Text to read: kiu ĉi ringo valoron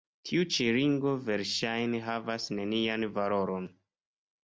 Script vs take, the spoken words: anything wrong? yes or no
yes